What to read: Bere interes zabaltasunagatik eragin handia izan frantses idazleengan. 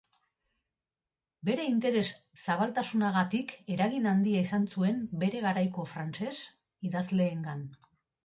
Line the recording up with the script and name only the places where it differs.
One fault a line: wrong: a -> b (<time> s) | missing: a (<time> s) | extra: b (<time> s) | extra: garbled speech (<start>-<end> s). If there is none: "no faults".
extra: zuen bere garaiko (4.8 s)